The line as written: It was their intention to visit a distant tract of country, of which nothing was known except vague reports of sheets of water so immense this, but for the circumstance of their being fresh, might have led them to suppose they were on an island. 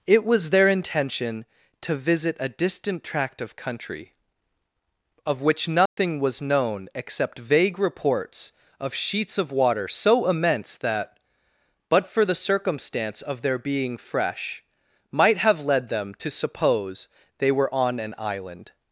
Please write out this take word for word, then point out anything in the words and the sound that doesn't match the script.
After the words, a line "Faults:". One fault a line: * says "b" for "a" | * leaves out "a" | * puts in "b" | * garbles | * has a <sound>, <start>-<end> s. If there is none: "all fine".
It was their intention to visit a distant tract of country, of which nothing was known except vague reports of sheets of water so immense that, but for the circumstance of their being fresh, might have led them to suppose they were on an island.
Faults:
* has a dropout, 5.9-6.0 s
* says "that" for "this"